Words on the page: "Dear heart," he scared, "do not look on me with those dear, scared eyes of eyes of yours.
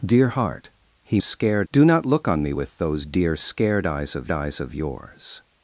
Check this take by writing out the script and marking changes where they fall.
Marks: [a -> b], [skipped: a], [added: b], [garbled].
"Dear heart," he scared, "do not look on me with those dear, scared eyes of eyes of yours.